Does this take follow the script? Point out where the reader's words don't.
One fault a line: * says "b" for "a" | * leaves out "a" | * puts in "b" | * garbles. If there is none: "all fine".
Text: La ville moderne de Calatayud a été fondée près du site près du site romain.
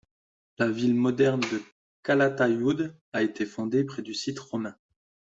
* leaves out "près du site"